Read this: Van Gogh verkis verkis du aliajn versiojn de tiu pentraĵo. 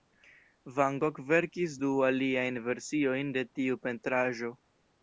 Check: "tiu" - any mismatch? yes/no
no